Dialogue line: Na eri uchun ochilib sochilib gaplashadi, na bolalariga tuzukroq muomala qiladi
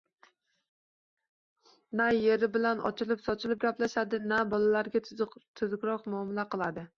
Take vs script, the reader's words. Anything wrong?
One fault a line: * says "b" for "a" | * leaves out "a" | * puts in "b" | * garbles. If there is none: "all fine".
* says "bilan" for "uchun"